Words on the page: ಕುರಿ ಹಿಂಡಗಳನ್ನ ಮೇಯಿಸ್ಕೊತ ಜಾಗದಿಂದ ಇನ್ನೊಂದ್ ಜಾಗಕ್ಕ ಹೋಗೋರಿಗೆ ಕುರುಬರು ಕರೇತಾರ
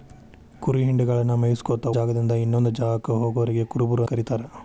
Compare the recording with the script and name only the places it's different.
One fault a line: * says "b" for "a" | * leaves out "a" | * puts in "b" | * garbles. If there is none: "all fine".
all fine